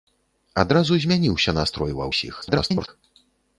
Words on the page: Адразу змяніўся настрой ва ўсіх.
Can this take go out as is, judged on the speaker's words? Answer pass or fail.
fail